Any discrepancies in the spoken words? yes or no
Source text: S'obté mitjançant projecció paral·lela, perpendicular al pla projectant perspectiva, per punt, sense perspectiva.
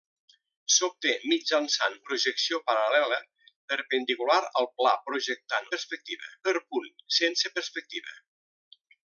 no